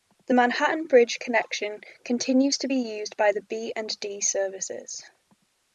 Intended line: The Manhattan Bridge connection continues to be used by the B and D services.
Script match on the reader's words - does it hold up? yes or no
yes